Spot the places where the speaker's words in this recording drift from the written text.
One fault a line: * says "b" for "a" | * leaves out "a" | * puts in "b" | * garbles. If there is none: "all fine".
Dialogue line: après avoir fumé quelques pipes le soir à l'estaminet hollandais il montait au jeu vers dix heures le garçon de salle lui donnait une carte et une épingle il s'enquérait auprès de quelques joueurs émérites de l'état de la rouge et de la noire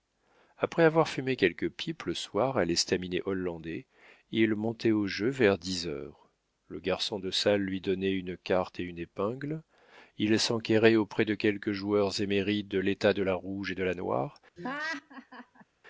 all fine